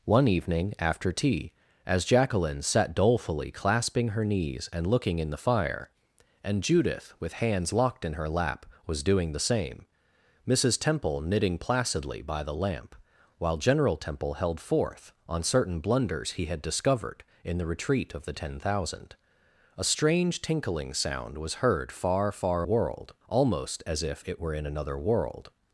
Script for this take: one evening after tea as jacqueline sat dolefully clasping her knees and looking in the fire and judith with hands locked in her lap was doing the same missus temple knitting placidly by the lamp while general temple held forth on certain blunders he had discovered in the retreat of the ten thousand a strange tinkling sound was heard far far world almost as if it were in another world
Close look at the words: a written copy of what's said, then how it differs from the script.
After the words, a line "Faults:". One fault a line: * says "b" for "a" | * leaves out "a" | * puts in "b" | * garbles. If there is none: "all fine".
one evening after tea as jacqueline sat dolefully clasping her knees and looking in the fire and judith with hands locked in her lap was doing the same missus temple knitting placidly by the lamp while general temple held forth on certain blunders he had discovered in the retreat of the ten thousand a strange tinkling sound was heard far far world almost as if it were in another world
Faults:
all fine